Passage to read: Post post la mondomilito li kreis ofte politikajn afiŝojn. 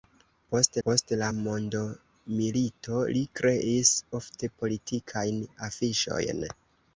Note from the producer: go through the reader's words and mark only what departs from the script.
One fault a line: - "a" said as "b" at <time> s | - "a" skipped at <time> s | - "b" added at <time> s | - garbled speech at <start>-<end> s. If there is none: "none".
none